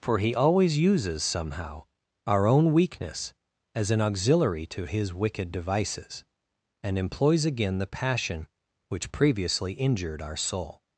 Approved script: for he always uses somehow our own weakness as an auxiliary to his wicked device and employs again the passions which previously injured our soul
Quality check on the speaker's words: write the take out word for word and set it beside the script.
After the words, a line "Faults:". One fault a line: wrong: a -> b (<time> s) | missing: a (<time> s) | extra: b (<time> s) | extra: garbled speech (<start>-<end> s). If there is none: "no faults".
for he always uses somehow our own weakness as an auxiliary to his wicked devices and employs again the passion which previously injured our soul
Faults:
wrong: device -> devices (5.5 s)
wrong: passions -> passion (7.9 s)